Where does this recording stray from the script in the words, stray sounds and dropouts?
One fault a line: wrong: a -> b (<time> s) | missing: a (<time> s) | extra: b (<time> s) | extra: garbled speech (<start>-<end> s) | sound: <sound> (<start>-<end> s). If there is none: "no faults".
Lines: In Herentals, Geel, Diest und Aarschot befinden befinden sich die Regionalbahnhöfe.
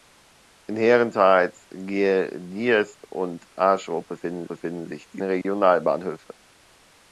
sound: dropout (5.4-5.4 s)